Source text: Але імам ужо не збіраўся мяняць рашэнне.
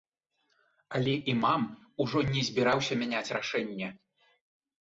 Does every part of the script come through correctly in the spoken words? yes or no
yes